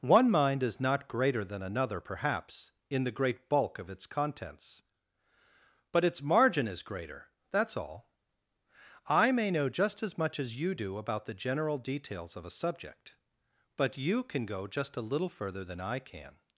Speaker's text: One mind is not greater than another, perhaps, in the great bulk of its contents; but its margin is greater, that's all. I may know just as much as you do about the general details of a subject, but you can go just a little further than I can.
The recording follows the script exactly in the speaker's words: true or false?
true